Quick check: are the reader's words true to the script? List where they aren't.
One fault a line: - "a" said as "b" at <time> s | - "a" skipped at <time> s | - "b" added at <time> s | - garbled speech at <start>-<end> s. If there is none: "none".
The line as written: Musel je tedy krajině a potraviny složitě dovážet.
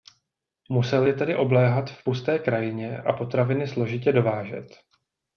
- "obléhat v pusté" added at 1.4 s